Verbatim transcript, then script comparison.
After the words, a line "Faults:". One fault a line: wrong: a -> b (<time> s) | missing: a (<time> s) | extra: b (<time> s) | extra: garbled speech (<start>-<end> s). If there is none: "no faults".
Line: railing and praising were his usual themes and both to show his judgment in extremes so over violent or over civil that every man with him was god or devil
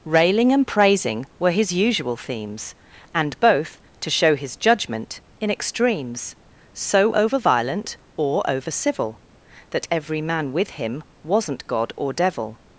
railing and praising were his usual themes and both to show his judgment in extremes so over violent or over civil that every man with him wasn't god or devil
Faults:
wrong: was -> wasn't (11.2 s)